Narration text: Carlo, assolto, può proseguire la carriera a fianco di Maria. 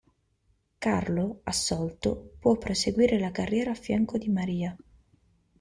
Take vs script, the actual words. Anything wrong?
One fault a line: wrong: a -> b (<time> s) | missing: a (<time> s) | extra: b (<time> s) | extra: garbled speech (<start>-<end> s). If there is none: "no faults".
no faults